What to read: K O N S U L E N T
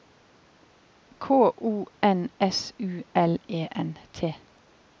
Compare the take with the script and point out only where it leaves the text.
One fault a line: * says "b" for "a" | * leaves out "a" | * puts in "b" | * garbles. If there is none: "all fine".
all fine